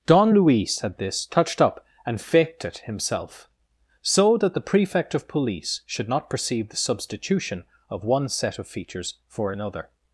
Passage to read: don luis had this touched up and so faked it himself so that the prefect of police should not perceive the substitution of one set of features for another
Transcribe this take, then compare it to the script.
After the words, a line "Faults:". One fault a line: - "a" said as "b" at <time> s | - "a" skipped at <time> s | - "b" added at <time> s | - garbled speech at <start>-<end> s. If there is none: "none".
don luis had this touched up and faked it himself so that the prefect of police should not perceive the substitution of one set of features for another
Faults:
- "so" skipped at 2.2 s